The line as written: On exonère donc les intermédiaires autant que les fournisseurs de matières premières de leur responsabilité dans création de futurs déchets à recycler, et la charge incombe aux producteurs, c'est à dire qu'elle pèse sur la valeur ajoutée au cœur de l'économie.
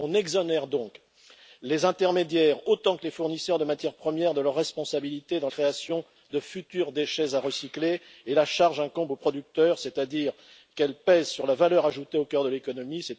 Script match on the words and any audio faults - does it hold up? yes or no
yes